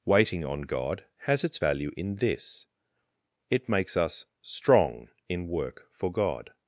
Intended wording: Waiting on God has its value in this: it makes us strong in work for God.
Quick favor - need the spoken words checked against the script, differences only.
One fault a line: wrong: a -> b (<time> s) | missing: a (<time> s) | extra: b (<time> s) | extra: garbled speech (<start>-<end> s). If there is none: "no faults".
no faults